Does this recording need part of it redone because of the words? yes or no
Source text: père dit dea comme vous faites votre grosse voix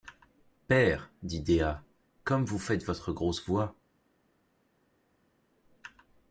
no